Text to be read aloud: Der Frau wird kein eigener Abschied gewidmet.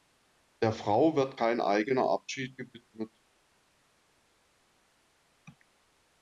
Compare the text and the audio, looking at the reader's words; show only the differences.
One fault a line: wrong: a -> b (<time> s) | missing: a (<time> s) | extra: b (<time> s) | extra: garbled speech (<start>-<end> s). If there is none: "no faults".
no faults